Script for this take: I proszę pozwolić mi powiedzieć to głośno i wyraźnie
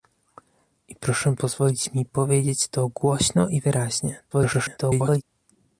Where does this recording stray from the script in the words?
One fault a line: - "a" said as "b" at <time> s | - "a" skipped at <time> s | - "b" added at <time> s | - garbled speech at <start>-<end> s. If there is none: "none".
- garbled speech at 4.3-5.2 s